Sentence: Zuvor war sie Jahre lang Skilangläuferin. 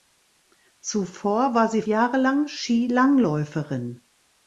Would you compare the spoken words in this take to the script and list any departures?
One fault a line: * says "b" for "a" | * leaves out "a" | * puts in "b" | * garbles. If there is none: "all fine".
all fine